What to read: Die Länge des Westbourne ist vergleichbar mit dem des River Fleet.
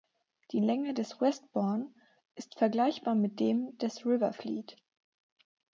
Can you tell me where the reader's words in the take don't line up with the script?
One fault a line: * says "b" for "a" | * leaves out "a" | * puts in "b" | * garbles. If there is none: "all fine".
all fine